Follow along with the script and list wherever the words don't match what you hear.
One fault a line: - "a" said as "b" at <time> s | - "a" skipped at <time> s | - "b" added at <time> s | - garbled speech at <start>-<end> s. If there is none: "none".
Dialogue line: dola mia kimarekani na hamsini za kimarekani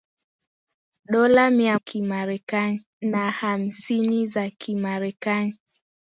none